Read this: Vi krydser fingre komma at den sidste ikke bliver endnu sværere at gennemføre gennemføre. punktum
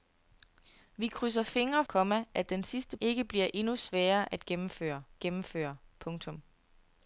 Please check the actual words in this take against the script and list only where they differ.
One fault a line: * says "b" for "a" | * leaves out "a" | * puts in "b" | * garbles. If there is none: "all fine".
all fine